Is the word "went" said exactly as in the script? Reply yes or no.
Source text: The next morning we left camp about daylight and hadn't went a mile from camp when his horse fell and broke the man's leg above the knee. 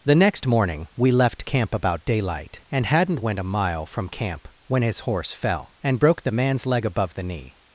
yes